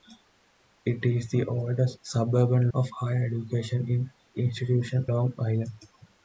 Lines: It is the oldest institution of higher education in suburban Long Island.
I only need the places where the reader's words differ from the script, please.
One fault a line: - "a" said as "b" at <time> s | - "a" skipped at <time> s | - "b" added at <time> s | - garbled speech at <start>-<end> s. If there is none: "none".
- "institution" said as "suburban" at 2.0 s
- "suburban" said as "institution" at 4.4 s